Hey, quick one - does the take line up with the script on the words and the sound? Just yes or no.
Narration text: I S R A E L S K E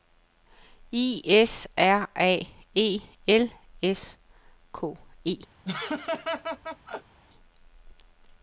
no